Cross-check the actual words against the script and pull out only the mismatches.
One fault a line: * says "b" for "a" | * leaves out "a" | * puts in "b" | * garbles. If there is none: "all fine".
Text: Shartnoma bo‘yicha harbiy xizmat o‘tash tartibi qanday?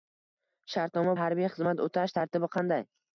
* leaves out "bo‘yicha"